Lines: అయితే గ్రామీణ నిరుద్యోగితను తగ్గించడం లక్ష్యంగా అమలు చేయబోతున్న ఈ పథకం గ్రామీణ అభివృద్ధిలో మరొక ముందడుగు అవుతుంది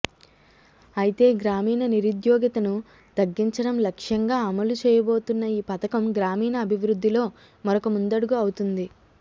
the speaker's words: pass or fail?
pass